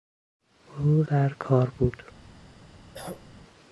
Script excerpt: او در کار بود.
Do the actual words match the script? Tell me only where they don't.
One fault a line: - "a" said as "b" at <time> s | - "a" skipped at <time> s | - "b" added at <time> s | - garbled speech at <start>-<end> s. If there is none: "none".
none